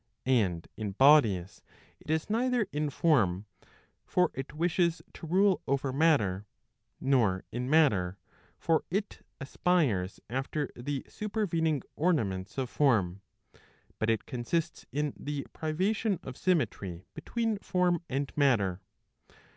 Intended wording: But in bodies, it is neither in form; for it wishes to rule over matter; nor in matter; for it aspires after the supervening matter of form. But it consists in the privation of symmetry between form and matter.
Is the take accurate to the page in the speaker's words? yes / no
no